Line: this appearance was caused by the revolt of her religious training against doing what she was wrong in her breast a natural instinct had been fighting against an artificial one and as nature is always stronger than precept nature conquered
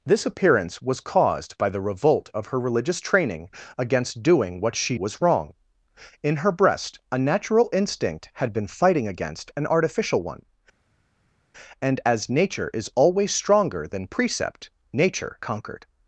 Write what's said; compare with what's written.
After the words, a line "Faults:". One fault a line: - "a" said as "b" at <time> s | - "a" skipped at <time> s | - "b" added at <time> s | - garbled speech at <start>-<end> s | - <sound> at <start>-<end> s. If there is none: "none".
this appearance was caused by the revolt of her religious training against doing what she was wrong in her breast a natural instinct had been fighting against an artificial one and as nature is always stronger than precept nature conquered
Faults:
none